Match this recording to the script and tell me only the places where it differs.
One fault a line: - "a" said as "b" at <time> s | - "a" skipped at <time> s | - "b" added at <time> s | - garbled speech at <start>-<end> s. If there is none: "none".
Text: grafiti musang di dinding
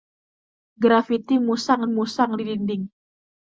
- "musang" added at 1.9 s